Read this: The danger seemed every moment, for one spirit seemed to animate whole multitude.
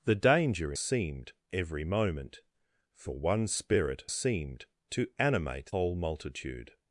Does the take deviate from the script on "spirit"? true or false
false